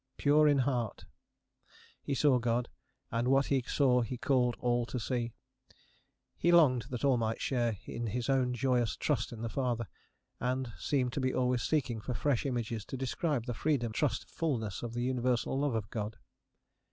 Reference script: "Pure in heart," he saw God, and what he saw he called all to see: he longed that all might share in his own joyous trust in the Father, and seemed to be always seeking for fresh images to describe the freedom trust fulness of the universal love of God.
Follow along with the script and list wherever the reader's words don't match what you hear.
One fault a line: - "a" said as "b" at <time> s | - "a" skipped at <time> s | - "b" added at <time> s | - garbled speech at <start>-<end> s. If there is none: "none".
none